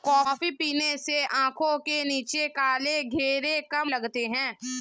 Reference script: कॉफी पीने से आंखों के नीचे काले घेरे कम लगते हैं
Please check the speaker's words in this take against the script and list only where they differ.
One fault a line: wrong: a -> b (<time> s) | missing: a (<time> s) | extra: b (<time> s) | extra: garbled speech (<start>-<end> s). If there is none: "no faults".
no faults